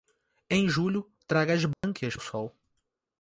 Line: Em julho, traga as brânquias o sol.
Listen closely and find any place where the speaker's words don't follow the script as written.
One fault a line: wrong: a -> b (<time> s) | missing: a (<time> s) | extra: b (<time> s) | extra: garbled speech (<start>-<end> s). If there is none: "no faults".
no faults